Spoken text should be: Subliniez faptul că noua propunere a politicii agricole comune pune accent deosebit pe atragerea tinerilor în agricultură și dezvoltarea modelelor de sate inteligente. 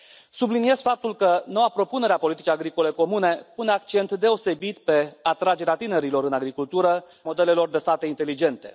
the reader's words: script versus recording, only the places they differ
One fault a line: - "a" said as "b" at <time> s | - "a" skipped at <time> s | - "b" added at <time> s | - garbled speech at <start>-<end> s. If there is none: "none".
- "și dezvoltarea" skipped at 7.0 s